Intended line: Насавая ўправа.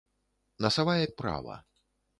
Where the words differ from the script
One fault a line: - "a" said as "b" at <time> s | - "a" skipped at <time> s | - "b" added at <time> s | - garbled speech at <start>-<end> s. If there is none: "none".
none